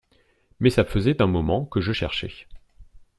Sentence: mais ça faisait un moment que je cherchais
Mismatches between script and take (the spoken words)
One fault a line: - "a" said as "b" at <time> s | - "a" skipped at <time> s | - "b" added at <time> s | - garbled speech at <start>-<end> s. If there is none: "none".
none